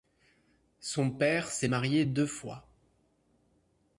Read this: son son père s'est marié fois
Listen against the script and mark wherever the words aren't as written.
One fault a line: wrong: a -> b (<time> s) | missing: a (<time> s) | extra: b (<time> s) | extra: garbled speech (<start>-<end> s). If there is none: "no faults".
missing: son (1.1 s)
extra: deux (2.0 s)